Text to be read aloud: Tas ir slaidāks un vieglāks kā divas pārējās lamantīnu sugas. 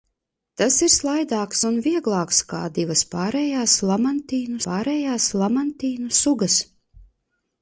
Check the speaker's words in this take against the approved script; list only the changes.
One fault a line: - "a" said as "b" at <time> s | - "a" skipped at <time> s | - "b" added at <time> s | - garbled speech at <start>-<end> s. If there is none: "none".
- "pārējās lamantīnu" added at 4.7 s